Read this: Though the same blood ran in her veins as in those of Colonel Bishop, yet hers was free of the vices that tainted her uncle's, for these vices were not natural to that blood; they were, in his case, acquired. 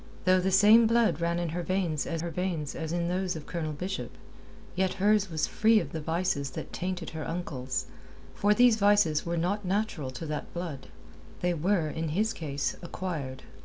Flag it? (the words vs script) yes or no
yes